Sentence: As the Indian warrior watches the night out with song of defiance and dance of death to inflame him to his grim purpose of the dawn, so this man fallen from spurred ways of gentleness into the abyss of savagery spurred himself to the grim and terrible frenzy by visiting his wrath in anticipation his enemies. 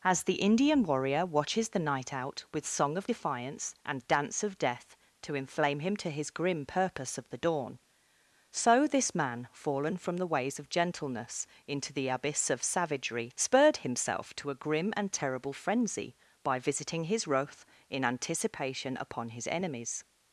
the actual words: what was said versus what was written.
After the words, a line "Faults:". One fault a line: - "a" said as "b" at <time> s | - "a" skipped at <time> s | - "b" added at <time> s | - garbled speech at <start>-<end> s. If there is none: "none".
As the Indian warrior watches the night out with song of defiance and dance of death to inflame him to his grim purpose of the dawn, so this man fallen from the ways of gentleness into the abyss of savagery spurred himself to a grim and terrible frenzy by visiting his wrath in anticipation upon his enemies.
Faults:
- "spurred" said as "the" at 10.2 s
- "the" said as "a" at 14.5 s
- "upon" added at 19.0 s